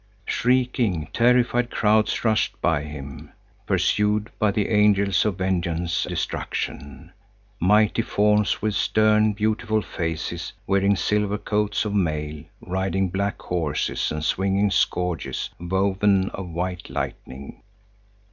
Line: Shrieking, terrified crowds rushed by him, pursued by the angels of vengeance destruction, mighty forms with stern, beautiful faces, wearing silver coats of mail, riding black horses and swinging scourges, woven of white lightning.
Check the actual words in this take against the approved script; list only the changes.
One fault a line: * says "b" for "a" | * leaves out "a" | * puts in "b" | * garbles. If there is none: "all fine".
all fine